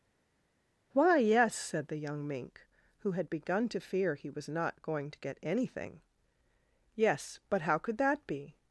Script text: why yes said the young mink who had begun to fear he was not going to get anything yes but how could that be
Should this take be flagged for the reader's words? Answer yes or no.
no